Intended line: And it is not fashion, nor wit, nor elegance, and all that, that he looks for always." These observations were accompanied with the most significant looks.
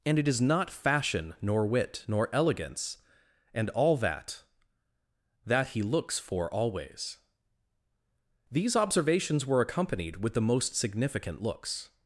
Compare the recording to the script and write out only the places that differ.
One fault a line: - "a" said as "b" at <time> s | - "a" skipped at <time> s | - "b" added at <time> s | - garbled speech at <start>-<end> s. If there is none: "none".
none